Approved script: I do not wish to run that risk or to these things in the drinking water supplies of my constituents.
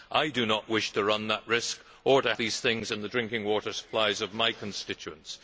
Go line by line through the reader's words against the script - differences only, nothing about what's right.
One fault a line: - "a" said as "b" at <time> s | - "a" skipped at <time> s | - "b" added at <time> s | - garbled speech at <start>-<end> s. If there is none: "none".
none